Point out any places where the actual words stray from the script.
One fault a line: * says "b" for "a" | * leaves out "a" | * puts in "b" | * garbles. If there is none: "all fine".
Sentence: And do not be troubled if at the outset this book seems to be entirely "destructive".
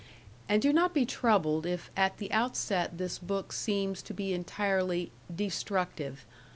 all fine